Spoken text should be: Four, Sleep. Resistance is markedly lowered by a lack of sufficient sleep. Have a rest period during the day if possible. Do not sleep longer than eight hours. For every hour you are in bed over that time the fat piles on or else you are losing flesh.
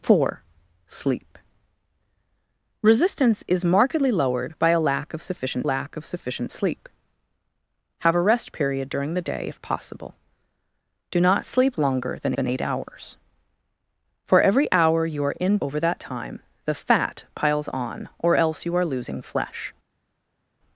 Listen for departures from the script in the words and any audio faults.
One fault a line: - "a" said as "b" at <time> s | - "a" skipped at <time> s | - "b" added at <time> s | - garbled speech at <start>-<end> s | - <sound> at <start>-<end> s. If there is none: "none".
- "lack of sufficient" added at 5.6 s
- "than" added at 12.3 s
- "bed" skipped at 15.6 s